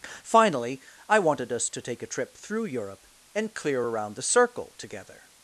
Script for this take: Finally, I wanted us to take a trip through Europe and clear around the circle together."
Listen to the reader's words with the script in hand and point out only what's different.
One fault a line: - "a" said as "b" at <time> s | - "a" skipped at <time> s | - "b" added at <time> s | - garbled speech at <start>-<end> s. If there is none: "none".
none